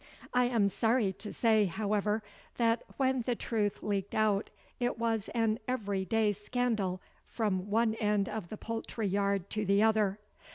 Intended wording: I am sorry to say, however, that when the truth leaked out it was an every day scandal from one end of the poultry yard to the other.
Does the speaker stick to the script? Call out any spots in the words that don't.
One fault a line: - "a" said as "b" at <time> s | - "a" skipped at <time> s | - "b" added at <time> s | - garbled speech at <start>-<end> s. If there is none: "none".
none